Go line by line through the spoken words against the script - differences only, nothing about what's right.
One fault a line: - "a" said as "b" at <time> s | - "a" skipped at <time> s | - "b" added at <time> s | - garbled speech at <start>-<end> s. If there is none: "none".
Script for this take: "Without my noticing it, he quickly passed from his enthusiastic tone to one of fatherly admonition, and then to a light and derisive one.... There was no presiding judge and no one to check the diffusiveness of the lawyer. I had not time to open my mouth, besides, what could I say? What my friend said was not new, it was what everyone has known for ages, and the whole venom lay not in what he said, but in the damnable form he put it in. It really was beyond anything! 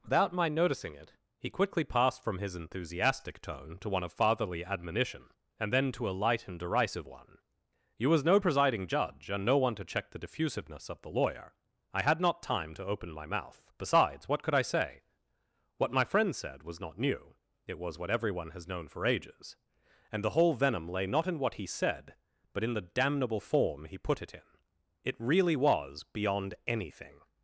- "There" said as "You" at 8.0 s